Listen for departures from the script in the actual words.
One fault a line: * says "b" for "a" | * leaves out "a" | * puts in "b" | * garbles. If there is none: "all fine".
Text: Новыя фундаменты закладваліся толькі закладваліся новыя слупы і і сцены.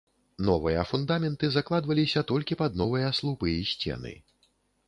* says "пад" for "закладваліся"
* leaves out "і"